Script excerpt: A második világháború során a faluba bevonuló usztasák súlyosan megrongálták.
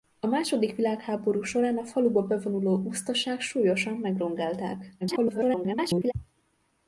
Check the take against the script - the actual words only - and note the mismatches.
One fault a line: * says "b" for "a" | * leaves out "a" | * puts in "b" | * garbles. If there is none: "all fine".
* garbles